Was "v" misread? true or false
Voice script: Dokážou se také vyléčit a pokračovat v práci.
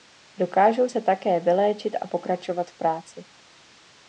false